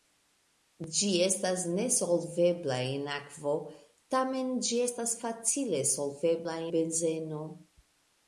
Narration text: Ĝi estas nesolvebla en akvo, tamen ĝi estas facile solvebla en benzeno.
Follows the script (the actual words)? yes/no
no